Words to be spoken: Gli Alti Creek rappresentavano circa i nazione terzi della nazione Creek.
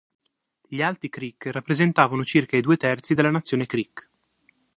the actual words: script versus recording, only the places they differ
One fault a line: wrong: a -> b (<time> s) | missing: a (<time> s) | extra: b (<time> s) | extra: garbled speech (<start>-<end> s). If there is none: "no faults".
wrong: nazione -> due (2.6 s)